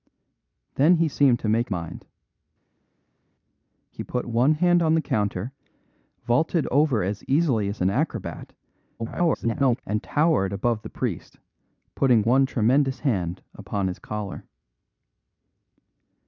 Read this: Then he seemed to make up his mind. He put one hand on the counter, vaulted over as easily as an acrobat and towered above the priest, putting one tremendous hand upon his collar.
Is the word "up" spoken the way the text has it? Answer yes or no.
no